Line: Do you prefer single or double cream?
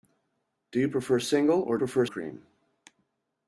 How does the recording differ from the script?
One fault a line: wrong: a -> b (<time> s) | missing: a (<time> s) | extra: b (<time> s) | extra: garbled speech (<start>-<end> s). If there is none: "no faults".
wrong: double -> prefer (1.8 s)